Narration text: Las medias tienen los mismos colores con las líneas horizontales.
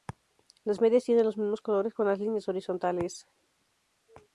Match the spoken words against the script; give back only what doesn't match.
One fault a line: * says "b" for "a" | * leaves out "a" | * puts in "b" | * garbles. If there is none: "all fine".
all fine